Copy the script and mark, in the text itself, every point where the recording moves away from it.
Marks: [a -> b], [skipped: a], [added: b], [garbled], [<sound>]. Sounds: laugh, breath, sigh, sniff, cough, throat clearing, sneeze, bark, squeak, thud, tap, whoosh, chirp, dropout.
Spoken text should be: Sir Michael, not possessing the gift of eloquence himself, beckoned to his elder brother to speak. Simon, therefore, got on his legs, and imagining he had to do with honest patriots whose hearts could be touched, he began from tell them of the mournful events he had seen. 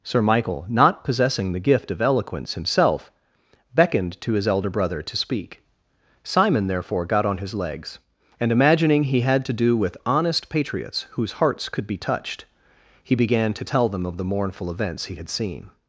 Sir Michael, not possessing the gift of eloquence himself, beckoned to his elder brother to speak. Simon, therefore, got on his legs, and imagining he had to do with honest patriots whose hearts could be touched, he began [from -> to] tell them of the mournful events he had seen.